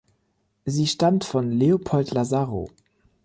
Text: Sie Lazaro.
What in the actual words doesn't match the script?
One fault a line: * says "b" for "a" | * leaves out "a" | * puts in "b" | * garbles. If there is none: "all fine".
* puts in "stammt von Leopold"